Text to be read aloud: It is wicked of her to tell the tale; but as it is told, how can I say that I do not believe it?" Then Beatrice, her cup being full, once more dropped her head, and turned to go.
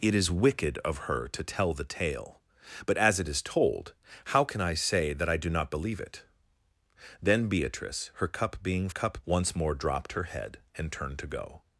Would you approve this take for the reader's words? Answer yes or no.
no